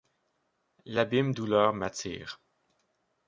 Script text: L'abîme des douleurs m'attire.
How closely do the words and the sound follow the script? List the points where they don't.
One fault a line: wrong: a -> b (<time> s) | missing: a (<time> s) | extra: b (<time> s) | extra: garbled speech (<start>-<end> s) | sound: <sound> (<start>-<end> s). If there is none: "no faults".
missing: des (1.3 s)